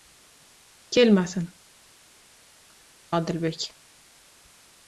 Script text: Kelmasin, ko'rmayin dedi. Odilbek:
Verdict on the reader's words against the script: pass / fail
fail